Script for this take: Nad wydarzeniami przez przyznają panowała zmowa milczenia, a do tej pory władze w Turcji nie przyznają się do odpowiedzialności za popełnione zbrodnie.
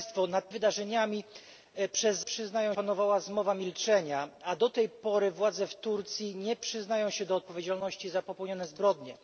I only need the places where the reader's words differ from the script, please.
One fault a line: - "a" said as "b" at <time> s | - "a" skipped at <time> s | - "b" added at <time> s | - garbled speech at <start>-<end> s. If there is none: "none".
none